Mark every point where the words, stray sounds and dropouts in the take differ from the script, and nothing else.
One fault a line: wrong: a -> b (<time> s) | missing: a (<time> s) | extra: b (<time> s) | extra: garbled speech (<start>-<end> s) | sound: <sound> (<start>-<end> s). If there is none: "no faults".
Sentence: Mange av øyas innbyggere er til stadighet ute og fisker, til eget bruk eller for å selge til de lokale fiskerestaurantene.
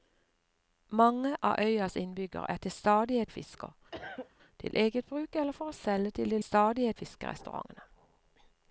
missing: ute (3.3 s)
sound: cough (3.9-4.3 s)
wrong: lokale -> stadighet (6.4 s)